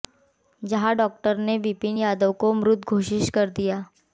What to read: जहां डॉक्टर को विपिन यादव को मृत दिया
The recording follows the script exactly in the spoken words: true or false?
false